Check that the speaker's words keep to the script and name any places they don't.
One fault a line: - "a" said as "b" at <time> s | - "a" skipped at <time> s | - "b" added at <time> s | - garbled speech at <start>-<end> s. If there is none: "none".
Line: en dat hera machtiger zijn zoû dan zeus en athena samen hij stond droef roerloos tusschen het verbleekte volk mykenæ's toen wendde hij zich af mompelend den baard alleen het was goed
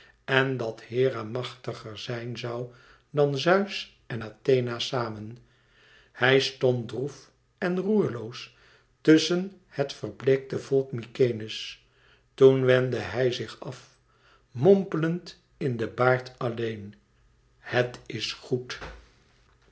- "en" added at 7.6 s
- "in" added at 15.6 s
- "was" said as "is" at 18.0 s